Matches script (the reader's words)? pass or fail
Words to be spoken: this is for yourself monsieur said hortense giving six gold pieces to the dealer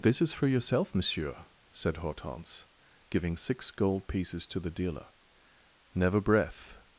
fail